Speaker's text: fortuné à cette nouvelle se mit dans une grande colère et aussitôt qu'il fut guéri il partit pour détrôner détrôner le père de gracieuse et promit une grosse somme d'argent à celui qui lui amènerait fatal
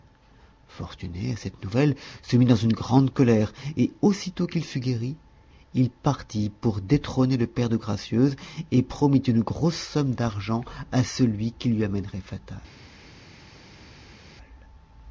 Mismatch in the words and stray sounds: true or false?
true